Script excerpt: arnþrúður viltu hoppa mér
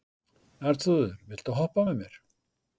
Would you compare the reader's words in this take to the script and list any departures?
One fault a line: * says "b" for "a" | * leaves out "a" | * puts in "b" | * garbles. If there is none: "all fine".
* puts in "með"